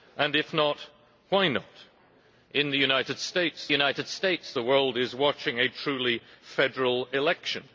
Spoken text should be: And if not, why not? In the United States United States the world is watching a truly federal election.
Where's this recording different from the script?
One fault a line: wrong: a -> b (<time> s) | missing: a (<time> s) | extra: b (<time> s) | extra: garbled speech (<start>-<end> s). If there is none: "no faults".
no faults